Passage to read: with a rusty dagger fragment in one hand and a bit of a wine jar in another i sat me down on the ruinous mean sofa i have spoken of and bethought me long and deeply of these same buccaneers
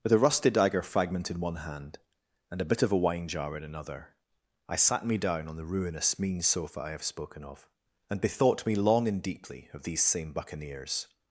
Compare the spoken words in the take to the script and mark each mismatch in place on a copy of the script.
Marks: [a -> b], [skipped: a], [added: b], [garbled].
with a rusty dagger fragment in one hand and a bit of a wine jar in another i sat me down on the ruinous mean sofa i have spoken of and bethought me long and deeply of these same buccaneers